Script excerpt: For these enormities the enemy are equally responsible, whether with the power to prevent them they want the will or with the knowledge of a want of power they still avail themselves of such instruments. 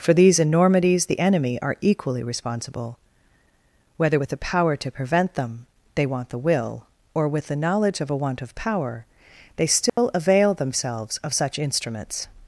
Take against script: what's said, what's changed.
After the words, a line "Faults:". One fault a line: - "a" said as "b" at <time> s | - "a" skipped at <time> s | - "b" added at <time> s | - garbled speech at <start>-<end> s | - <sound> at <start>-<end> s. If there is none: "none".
For these enormities the enemy are equally responsible, whether with the power to prevent them they want the will or with the knowledge of a want of power they still avail themselves of such instruments.
Faults:
- dropout at 9.9-10.0 s